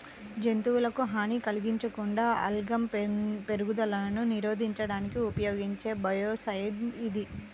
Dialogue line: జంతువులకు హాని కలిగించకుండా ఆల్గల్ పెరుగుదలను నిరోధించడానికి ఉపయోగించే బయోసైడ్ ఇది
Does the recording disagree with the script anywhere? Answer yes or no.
no